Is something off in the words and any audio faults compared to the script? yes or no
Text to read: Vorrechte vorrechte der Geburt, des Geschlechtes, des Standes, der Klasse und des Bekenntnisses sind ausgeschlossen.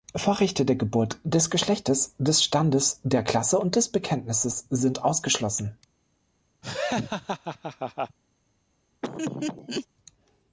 yes